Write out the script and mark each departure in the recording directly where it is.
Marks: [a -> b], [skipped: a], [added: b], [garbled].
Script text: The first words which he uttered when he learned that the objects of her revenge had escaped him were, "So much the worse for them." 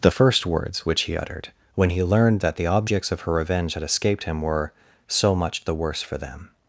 The first words which he uttered when he learned that the objects of her revenge had escaped him were, "So much the worse for them."